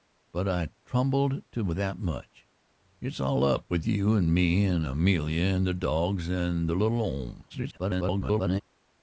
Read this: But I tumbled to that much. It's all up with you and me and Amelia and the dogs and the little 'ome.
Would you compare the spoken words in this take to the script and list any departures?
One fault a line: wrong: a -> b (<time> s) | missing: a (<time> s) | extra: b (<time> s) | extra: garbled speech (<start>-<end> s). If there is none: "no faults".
extra: garbled speech (7.5-8.6 s)